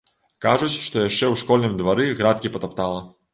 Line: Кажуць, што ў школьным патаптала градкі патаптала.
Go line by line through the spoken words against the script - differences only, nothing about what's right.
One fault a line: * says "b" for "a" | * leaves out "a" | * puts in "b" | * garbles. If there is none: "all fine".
* puts in "яшчэ"
* says "двары" for "патаптала"